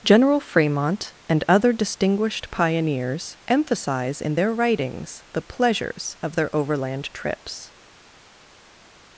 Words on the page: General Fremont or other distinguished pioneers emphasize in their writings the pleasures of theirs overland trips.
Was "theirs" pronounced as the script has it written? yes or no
no